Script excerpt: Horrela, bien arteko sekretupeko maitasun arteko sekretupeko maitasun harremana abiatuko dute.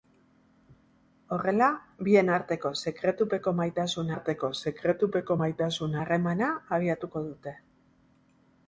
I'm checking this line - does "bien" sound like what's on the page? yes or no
yes